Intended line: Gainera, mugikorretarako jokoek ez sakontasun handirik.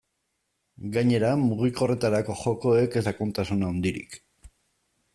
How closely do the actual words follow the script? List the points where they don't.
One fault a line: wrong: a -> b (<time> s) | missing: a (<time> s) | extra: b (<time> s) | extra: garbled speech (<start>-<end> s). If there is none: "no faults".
no faults